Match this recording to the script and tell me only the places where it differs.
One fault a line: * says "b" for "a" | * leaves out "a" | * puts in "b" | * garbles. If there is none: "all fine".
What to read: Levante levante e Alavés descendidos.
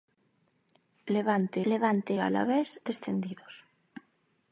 all fine